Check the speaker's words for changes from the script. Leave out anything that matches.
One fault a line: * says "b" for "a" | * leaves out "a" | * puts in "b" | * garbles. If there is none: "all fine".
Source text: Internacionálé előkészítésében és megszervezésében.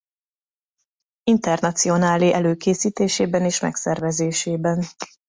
all fine